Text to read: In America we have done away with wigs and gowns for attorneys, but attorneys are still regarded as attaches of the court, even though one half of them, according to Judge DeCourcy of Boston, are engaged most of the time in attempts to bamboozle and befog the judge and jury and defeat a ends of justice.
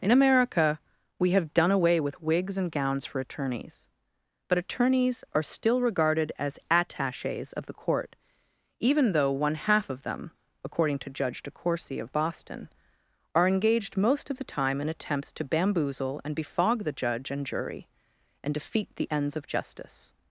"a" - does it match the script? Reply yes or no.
no